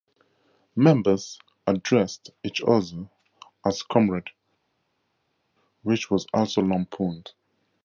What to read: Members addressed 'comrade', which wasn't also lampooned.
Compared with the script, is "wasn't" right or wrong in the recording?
wrong